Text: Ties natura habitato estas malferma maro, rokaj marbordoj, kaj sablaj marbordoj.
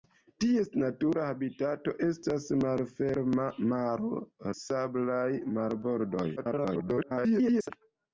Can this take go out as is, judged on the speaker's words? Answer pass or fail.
fail